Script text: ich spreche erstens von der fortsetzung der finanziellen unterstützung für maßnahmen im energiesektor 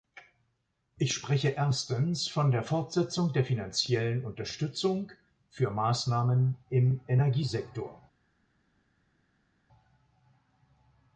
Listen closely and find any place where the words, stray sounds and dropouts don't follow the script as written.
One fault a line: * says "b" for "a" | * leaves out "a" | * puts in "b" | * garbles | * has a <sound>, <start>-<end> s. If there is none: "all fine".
all fine